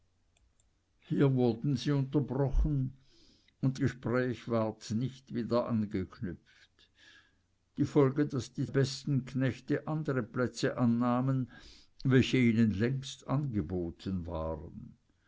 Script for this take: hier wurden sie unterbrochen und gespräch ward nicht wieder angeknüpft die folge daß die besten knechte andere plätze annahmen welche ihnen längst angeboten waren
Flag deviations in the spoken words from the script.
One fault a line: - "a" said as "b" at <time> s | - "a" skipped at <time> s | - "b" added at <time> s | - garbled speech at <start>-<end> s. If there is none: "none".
none